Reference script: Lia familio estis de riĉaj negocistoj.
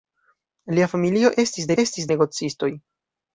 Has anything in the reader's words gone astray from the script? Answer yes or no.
yes